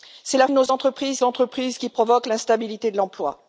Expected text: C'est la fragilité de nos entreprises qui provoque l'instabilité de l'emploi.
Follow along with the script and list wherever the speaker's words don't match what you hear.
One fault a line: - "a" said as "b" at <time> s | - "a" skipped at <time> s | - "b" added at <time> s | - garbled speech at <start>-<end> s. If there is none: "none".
- "fragilité" skipped at 0.5 s
- "entreprises" added at 1.2 s